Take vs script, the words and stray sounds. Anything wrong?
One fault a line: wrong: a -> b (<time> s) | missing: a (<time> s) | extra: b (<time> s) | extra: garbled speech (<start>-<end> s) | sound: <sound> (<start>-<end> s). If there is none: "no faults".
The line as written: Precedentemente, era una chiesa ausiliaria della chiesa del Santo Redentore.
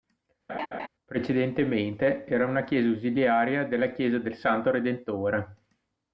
sound: laugh (0.5-0.9 s)